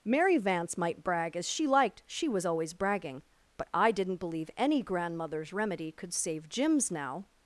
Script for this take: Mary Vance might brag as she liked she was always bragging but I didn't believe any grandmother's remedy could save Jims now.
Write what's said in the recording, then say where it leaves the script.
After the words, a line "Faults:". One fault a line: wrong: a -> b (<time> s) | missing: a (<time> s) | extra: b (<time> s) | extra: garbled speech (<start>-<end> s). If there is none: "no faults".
Mary Vance might brag as she liked she was always bragging but I didn't believe any grandmother's remedy could save Jims now.
Faults:
no faults